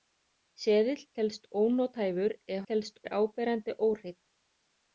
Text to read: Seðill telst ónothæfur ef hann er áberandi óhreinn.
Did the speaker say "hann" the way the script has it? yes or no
no